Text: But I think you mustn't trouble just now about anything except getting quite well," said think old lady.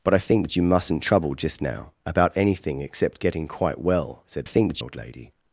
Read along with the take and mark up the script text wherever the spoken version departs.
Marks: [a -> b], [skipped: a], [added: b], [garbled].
But I think you mustn't trouble just now about anything except getting quite well," said think old lady.